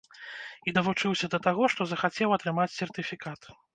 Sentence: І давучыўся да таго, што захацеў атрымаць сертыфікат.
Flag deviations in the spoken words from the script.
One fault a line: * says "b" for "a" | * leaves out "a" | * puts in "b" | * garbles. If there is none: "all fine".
all fine